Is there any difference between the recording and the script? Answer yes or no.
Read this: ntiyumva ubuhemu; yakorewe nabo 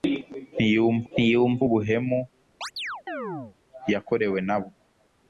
yes